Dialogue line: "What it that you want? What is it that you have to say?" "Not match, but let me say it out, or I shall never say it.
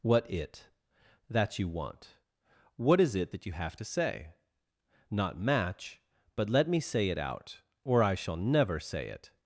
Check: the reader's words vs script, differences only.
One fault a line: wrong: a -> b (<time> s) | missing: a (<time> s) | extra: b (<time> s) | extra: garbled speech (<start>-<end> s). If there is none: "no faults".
no faults